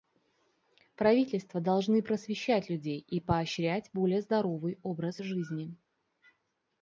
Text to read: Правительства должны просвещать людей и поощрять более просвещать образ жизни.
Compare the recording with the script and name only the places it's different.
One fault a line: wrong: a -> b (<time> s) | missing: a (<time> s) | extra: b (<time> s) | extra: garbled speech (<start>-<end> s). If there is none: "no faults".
wrong: просвещать -> здоровый (4.2 s)